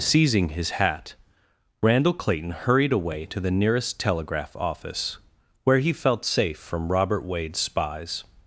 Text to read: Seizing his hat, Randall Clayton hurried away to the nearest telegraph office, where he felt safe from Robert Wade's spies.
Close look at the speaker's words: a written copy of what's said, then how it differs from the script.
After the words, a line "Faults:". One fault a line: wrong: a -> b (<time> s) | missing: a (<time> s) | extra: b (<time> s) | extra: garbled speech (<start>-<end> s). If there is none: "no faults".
Seizing his hat, Randall Clayton hurried away to the nearest telegraph office, where he felt safe from Robert Wade's spies.
Faults:
no faults